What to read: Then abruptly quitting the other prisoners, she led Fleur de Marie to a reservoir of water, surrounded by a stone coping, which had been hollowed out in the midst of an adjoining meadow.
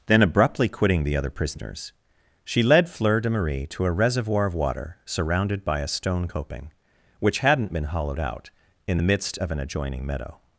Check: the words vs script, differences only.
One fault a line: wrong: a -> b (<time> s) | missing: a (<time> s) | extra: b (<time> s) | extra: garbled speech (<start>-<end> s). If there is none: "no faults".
wrong: had -> hadn't (7.4 s)